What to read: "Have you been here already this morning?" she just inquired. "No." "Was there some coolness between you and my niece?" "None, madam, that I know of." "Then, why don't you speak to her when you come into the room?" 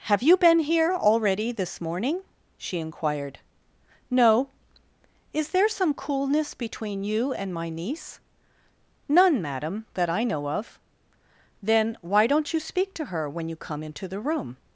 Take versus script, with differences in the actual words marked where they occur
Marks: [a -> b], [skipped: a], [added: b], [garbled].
"Have you been here already this morning?" she [skipped: just] inquired. "No." ["Was -> Is] there some coolness between you and my niece?" "None, madam, that I know of." "Then, why don't you speak to her when you come into the room?"